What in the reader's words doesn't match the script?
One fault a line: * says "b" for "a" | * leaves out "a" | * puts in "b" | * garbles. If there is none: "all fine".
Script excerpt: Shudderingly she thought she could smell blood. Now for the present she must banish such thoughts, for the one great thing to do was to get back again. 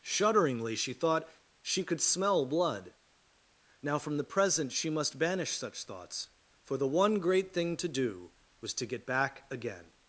* says "from" for "for"